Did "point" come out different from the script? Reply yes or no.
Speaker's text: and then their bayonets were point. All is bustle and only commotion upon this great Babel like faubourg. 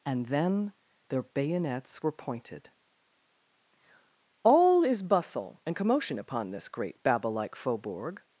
yes